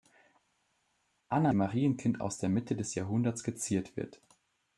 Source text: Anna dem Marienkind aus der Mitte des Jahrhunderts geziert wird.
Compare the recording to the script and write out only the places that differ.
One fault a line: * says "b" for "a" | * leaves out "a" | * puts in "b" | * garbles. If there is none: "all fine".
all fine